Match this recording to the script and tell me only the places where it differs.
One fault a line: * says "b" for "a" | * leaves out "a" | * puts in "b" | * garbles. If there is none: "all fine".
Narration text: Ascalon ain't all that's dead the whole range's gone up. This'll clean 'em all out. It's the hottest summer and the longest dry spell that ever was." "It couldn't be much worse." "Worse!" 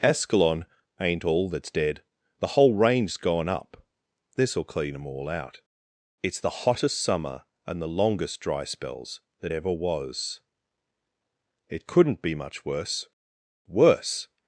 * says "spells" for "spell"